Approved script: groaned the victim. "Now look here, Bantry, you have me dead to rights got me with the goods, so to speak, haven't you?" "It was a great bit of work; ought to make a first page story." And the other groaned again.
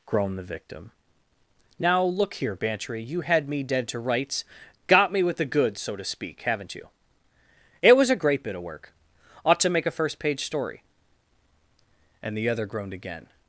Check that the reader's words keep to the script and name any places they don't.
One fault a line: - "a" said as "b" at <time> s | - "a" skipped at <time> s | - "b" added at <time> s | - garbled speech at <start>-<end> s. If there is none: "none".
- "have" said as "had" at 3.2 s